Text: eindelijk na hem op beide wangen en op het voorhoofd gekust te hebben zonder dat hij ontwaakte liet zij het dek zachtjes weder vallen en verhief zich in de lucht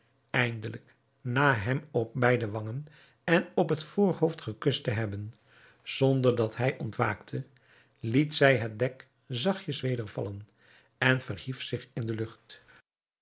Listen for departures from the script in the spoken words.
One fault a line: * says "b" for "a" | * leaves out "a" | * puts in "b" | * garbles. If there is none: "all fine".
all fine